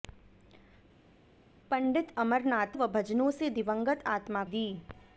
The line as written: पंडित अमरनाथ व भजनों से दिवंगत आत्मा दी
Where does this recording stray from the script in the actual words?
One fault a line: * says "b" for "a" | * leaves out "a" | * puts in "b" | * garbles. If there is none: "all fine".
all fine